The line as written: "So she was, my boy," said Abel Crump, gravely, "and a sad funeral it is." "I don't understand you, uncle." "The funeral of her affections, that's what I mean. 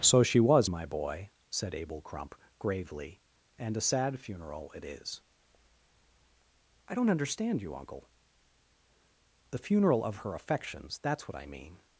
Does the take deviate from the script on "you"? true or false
false